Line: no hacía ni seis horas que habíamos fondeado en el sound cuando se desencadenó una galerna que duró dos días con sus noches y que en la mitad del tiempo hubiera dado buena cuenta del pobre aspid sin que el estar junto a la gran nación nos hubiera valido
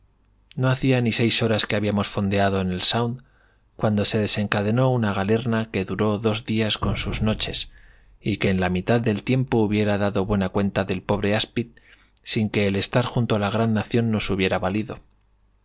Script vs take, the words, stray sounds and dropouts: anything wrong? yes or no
no